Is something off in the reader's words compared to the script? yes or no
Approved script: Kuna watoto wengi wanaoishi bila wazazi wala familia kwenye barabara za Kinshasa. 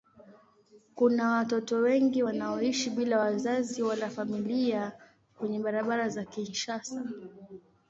no